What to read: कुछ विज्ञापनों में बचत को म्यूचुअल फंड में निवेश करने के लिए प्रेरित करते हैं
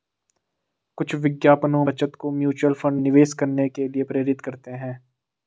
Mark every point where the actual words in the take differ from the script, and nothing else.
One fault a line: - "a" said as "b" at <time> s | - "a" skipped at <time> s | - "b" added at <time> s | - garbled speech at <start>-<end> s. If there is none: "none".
- "में" skipped at 1.8 s
- "में" skipped at 3.0 s